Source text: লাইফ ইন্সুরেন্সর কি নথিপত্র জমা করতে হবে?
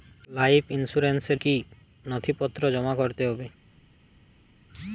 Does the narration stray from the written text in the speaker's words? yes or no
no